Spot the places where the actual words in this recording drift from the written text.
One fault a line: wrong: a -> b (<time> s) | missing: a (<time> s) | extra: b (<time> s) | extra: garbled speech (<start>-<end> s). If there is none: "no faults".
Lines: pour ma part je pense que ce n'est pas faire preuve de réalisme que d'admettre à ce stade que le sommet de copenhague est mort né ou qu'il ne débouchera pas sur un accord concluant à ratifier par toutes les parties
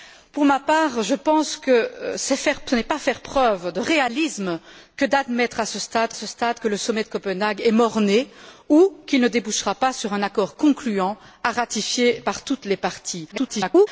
extra: ce stade (6.1 s)
extra: garbled speech (13.3-13.9 s)